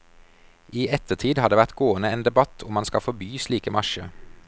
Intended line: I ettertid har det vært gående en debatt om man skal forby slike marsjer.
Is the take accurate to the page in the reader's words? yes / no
yes